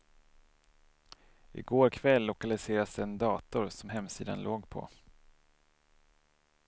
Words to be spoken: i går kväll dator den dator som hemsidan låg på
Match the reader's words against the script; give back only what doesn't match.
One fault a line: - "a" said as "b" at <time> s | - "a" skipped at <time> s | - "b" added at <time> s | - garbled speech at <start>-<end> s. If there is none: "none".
- "dator" said as "lokaliserades" at 2.2 s